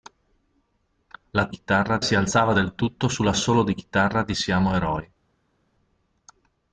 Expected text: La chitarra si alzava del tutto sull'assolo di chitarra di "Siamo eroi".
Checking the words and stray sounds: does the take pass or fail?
pass